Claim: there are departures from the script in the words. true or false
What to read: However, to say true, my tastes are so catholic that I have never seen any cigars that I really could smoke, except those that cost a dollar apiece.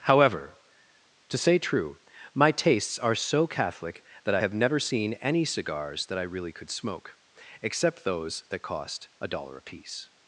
false